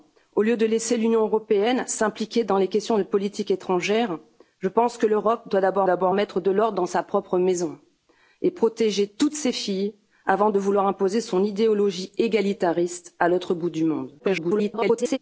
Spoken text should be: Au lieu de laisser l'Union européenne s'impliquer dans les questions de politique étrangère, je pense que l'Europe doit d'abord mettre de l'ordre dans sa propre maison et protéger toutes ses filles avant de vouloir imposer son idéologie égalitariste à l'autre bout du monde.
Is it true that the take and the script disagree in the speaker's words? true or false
true